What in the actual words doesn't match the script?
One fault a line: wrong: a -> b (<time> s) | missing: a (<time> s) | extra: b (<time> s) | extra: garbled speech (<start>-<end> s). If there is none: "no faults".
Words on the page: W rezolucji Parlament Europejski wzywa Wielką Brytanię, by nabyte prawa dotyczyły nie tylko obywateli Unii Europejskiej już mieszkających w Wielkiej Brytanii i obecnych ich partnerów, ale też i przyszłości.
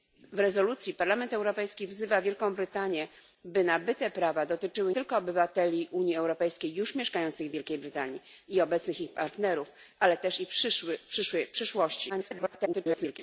missing: nie (4.9 s)
extra: garbled speech (12.1-13.2 s)